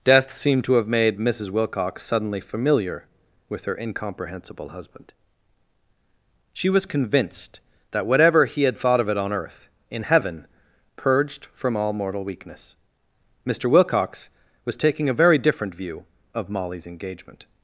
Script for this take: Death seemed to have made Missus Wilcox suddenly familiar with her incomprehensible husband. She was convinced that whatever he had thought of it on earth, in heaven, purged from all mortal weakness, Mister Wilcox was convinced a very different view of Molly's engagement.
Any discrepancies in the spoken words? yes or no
yes